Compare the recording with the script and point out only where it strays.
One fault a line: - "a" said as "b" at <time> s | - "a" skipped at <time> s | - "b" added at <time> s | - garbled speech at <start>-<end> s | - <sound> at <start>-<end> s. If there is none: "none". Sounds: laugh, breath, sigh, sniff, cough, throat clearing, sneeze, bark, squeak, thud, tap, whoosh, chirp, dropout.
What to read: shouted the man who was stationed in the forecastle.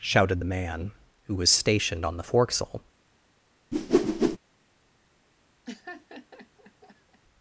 - "in" said as "on" at 2.0 s
- whoosh at 3.7-4.4 s
- laugh at 5.7-7.2 s